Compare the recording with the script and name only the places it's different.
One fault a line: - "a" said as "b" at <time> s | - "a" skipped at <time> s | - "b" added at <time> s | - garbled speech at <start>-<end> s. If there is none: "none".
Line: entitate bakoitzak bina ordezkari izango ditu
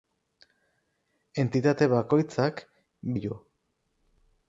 - "bina ordezkari izango" skipped at 2.6 s